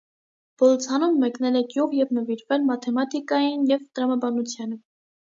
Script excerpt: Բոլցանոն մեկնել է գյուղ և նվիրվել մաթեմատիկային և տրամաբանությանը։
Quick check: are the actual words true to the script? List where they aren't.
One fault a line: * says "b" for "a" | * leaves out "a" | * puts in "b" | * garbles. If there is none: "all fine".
all fine